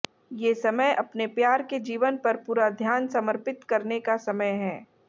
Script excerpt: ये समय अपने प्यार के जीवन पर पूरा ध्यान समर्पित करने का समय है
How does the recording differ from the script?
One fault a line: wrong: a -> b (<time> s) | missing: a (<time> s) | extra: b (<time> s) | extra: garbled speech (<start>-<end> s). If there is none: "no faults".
no faults